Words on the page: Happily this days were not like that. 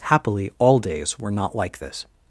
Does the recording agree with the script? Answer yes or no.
no